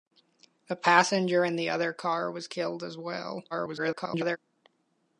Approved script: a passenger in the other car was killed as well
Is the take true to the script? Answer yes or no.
no